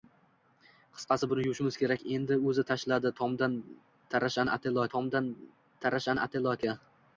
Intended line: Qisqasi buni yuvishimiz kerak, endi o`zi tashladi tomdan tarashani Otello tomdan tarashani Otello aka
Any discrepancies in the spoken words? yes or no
no